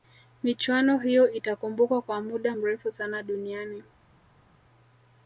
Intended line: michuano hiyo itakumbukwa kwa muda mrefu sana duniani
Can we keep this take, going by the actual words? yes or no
yes